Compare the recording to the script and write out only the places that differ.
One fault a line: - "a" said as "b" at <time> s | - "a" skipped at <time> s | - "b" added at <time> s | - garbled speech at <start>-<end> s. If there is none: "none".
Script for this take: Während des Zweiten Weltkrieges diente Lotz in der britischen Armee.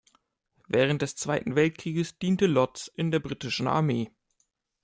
none